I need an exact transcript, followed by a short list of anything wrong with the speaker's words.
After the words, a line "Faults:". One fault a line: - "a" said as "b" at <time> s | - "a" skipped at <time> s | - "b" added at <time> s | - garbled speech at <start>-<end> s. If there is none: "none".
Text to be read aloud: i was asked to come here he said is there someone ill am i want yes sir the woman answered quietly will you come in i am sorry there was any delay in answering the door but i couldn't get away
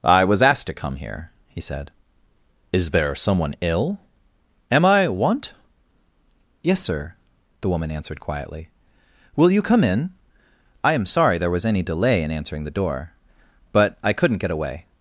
i was asked to come here he said is there someone ill am i want yes sir the woman answered quietly will you come in i am sorry there was any delay in answering the door but i couldn't get away
Faults:
none